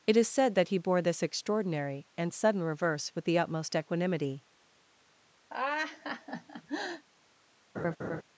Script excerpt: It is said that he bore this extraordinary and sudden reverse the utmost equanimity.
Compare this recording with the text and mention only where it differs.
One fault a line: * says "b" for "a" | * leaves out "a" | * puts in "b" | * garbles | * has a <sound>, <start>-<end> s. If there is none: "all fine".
* puts in "with"
* has a laugh, 5.5-7.0 s
* has a laugh, 7.7-8.2 s